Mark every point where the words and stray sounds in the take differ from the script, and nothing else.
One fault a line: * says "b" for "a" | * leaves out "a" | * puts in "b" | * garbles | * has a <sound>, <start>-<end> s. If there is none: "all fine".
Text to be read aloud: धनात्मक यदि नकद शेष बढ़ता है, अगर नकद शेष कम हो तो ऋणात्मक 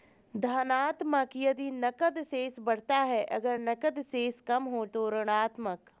all fine